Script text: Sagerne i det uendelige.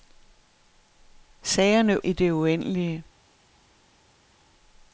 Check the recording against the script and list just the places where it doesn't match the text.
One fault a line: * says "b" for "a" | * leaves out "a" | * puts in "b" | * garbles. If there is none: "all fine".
all fine